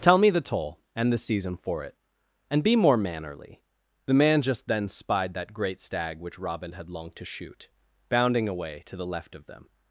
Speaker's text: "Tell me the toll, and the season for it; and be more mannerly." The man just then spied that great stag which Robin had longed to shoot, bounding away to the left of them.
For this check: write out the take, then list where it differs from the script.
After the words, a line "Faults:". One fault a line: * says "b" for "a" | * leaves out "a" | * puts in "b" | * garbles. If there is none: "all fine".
"Tell me the toll, and the season for it; and be more mannerly." The man just then spied that great stag which Robin had longed to shoot, bounding away to the left of them.
Faults:
all fine